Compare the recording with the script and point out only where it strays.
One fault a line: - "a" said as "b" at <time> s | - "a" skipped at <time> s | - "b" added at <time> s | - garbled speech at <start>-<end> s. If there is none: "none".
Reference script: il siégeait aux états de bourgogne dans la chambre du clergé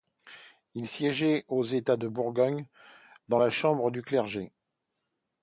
none